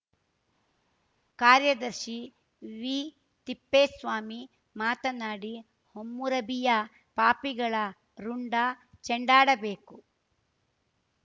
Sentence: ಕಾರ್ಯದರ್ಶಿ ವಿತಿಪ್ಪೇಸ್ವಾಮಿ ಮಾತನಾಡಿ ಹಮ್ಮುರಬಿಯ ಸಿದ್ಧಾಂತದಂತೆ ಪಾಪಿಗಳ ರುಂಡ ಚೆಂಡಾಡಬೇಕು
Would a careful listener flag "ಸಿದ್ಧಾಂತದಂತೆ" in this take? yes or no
yes